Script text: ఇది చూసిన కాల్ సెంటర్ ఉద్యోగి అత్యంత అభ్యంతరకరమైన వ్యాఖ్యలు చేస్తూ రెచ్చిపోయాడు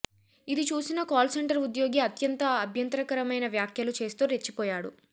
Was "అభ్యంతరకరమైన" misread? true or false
false